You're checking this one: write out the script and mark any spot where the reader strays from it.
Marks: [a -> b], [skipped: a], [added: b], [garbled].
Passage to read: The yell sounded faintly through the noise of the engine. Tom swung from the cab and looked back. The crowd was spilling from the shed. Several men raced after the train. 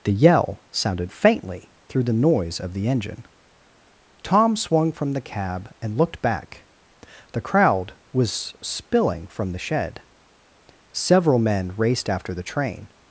The yell sounded faintly through the noise of the engine. Tom swung from the cab and looked back. The crowd was spilling from the shed. Several men raced after the train.